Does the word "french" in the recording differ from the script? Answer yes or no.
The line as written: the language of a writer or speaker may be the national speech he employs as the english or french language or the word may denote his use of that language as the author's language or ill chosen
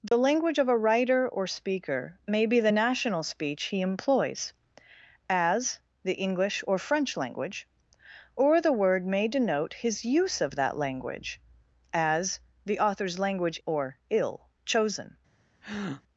no